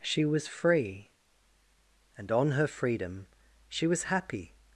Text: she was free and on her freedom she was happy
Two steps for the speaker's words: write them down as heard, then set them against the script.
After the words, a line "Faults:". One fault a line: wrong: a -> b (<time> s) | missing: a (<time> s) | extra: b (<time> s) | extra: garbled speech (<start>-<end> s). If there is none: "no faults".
she was free and on her freedom she was happy
Faults:
no faults